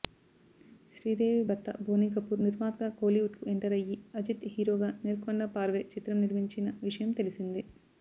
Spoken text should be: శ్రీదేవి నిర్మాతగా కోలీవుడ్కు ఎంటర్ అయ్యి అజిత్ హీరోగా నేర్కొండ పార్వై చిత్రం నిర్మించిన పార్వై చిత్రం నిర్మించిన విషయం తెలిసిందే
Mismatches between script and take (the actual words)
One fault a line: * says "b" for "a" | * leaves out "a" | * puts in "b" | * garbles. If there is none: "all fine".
* puts in "భర్త బోనీకపూర్"
* leaves out "పార్వై చిత్రం నిర్మించిన"